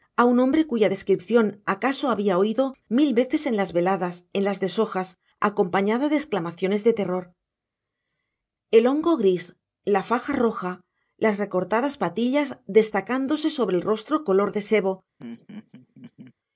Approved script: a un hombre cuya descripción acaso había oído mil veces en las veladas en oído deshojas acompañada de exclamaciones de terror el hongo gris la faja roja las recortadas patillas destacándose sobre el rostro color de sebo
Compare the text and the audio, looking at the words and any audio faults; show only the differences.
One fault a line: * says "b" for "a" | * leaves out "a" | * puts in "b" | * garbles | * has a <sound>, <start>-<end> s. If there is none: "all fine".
* says "las" for "oído"
* has a laugh, 15.2-16.3 s